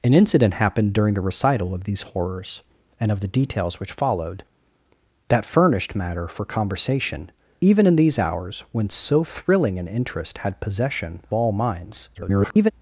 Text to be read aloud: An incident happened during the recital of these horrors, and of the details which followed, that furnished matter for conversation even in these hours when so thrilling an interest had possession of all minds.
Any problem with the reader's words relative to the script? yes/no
yes